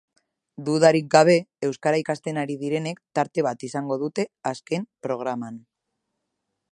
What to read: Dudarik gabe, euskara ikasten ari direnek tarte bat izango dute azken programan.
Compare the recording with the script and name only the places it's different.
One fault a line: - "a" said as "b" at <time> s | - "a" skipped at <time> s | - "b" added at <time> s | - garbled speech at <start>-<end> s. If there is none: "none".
none